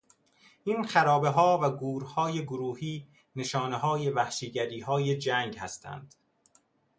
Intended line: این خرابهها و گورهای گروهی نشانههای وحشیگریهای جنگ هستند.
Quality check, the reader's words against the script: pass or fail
pass